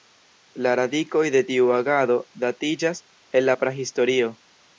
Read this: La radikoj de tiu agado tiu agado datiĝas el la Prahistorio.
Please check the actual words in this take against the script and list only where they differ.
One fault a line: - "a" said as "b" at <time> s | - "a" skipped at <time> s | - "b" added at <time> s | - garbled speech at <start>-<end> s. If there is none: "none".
- "tiu agado" skipped at 2.2 s